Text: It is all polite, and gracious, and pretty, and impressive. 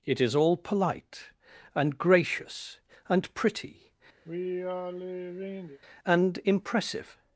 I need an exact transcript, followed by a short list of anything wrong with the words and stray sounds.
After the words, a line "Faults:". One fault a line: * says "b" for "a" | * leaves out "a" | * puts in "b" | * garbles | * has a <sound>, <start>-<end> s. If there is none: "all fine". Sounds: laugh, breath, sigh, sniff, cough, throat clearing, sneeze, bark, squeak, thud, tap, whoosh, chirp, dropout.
It is all polite, and gracious, and pretty, and impressive.
Faults:
* has a sigh, 4.2-5.8 s